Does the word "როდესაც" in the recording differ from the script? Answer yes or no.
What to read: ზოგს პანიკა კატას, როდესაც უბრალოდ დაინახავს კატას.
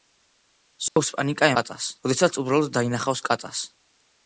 no